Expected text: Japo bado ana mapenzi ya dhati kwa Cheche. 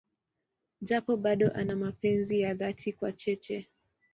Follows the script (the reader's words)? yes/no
yes